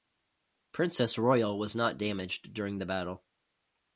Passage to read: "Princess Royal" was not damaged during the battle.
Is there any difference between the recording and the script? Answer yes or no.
no